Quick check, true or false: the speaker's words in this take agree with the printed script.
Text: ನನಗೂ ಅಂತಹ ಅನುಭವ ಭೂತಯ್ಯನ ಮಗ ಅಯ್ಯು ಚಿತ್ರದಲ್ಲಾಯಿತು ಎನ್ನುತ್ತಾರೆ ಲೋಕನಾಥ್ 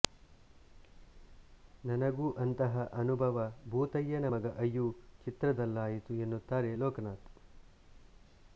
true